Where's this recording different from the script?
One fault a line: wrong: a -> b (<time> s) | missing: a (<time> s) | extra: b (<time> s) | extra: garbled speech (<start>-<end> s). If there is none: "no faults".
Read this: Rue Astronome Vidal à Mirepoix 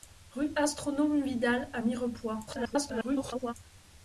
extra: garbled speech (2.5-3.5 s)